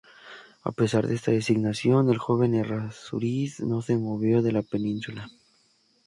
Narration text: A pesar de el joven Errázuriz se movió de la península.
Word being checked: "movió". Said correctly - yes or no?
yes